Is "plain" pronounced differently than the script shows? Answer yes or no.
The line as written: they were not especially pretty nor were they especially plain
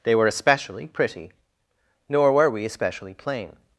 no